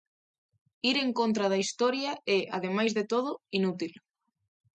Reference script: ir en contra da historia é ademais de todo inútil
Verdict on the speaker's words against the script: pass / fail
pass